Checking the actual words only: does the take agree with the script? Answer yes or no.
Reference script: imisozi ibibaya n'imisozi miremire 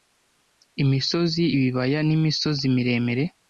yes